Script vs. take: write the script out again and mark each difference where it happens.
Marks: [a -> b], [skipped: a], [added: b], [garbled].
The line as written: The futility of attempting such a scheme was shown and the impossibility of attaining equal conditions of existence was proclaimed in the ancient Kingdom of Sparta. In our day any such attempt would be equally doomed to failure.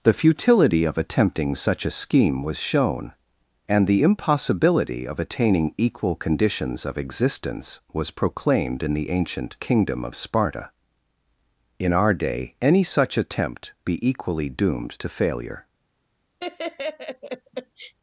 The futility of attempting such a scheme was shown and the impossibility of attaining equal conditions of existence was proclaimed in the ancient Kingdom of Sparta. In our day any such attempt [skipped: would] be equally doomed to failure.